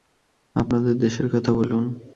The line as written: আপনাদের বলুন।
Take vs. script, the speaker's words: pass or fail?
fail